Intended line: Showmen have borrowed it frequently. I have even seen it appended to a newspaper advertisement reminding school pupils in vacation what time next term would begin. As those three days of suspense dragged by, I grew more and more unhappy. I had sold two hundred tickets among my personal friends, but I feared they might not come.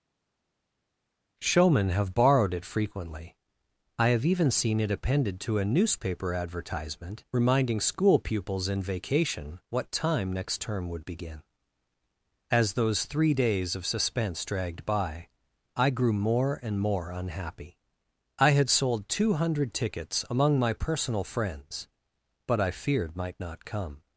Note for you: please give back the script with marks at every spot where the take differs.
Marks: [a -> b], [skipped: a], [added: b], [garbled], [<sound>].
Showmen have borrowed it frequently. I have even seen it appended to a newspaper advertisement reminding school pupils in vacation what time next term would begin. As those three days of suspense dragged by, I grew more and more unhappy. I had sold two hundred tickets among my personal friends, but I feared [skipped: they] might not come.